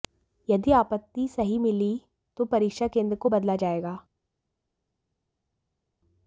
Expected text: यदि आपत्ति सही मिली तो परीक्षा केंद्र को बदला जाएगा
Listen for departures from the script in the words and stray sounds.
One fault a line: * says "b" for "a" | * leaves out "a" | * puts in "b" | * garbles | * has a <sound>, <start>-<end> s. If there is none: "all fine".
all fine